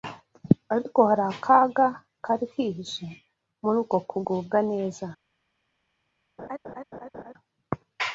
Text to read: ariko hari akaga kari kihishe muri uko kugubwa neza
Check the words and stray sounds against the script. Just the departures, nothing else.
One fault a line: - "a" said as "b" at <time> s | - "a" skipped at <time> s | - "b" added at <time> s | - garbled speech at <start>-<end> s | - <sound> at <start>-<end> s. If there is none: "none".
- laugh at 6.4-7.3 s